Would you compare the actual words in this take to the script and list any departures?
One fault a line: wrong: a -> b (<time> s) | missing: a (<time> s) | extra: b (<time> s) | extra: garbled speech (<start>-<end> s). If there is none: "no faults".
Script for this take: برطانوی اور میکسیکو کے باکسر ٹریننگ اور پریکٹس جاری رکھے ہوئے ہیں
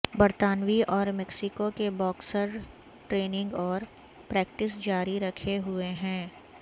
no faults